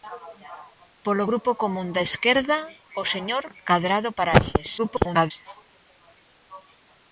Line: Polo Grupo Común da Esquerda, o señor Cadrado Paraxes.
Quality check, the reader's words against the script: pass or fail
fail